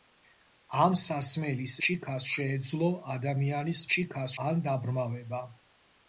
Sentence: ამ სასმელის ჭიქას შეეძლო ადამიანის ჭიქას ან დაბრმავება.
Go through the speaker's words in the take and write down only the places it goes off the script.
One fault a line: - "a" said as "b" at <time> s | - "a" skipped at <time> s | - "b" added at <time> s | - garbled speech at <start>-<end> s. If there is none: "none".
none